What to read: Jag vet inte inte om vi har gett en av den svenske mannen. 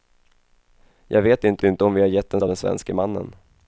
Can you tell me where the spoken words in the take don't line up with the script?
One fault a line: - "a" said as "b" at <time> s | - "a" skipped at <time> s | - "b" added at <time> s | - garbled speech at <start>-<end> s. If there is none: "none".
none